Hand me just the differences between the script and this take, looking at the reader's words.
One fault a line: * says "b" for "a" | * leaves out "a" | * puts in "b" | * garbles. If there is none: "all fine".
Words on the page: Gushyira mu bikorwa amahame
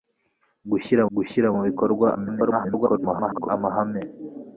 * puts in "gushyira"
* garbles